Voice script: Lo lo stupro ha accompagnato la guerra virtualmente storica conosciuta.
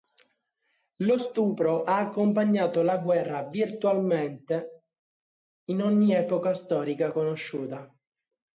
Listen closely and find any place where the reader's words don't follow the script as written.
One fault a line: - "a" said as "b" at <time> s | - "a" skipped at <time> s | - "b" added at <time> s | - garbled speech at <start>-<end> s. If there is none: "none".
- "lo" skipped at 1.2 s
- "in ogni epoca" added at 5.7 s